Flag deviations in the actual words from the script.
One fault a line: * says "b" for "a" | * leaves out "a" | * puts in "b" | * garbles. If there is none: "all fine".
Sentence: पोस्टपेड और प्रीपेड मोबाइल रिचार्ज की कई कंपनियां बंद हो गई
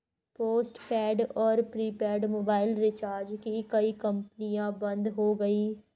all fine